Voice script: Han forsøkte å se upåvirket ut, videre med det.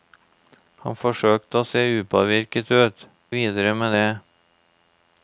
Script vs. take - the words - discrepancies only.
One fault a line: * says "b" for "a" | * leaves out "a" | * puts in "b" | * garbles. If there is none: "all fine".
all fine